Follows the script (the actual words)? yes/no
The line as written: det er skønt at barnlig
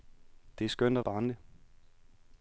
yes